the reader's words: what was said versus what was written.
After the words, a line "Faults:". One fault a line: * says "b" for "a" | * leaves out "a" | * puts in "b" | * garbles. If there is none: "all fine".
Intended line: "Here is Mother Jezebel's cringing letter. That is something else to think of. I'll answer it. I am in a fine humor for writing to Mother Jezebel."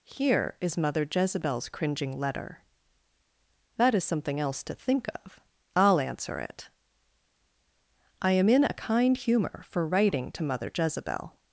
"Here is Mother Jezebel's cringing letter. That is something else to think of. I'll answer it. I am in a kind humor for writing to Mother Jezebel."
Faults:
* says "kind" for "fine"